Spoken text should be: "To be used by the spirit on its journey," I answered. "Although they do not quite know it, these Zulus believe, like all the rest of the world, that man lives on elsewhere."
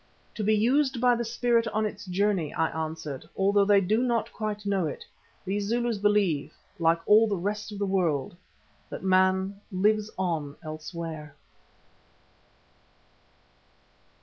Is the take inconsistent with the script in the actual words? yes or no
no